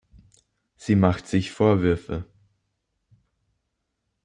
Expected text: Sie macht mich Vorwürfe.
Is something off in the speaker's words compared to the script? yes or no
yes